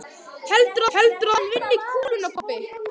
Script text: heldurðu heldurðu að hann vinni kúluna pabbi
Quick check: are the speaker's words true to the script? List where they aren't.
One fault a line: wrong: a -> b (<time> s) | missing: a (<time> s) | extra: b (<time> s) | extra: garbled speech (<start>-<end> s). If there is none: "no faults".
no faults